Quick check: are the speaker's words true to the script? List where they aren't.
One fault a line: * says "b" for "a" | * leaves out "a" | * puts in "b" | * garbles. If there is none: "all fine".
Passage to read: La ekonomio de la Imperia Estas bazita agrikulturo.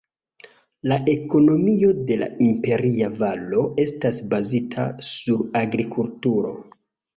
* puts in "Valo"
* puts in "sur"